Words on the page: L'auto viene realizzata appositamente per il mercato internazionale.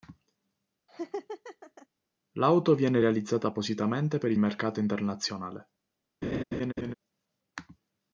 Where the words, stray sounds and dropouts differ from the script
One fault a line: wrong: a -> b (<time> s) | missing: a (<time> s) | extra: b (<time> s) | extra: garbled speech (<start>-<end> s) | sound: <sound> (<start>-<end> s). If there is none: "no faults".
sound: laugh (0.9-1.9 s)
sound: laugh (6.2-6.9 s)